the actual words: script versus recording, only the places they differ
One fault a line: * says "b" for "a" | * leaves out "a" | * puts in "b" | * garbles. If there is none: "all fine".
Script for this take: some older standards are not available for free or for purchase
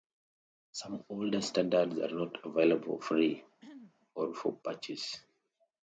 all fine